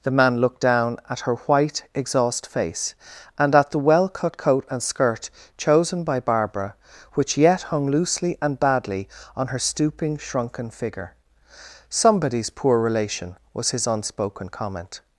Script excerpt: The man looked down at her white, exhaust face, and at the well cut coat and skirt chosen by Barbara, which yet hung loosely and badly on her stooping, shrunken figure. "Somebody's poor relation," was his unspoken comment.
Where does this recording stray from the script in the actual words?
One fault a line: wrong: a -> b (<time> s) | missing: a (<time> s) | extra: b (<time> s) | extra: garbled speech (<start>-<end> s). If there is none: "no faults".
no faults